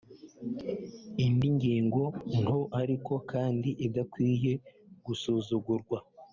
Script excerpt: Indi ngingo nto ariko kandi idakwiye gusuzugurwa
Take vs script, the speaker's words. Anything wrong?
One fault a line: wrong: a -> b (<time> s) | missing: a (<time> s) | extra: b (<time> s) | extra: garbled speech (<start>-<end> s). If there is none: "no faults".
no faults